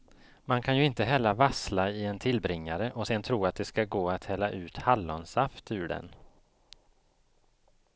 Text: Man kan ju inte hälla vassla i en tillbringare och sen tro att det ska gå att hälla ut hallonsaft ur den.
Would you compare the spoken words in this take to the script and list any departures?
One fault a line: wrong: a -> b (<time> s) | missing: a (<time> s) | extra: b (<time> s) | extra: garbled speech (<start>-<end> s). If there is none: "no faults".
no faults